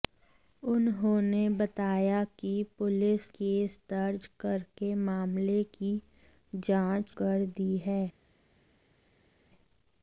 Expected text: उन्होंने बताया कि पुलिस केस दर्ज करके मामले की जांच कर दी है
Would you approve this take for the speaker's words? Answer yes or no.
yes